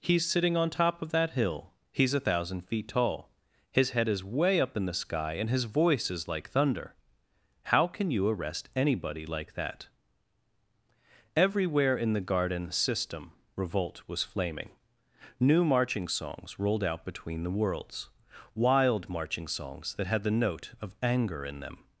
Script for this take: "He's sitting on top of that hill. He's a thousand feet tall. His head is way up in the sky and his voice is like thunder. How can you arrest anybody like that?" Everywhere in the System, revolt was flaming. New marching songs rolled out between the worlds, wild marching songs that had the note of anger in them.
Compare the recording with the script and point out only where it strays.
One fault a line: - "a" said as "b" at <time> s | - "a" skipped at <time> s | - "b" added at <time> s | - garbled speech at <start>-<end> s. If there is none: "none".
- "garden" added at 12.2 s